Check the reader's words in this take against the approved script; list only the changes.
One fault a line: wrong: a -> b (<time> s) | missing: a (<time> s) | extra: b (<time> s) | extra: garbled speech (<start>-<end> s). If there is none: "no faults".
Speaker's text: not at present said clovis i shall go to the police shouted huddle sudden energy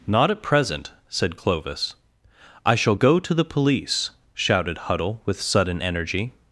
extra: with (5.2 s)